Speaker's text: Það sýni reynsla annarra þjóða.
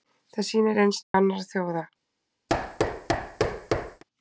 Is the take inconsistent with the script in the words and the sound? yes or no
yes